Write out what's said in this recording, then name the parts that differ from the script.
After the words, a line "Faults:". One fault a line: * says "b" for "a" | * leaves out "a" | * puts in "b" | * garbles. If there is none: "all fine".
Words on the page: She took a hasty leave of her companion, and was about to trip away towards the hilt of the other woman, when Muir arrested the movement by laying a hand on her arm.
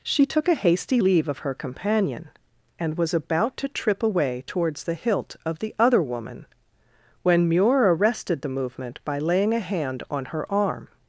She took a hasty leave of her companion, and was about to trip away towards the hilt of the other woman, when Muir arrested the movement by laying a hand on her arm.
Faults:
all fine